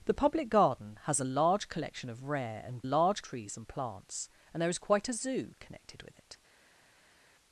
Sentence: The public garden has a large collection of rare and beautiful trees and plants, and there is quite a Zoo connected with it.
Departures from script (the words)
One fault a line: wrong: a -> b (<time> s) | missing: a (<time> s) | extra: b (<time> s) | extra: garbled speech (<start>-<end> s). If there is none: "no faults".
wrong: beautiful -> large (2.8 s)